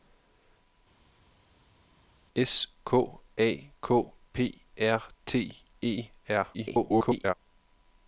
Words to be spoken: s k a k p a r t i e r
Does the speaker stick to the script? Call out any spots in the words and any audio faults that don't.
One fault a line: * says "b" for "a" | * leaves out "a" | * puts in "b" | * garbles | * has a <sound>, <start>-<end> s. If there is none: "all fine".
* leaves out "a"
* leaves out "i"
* garbles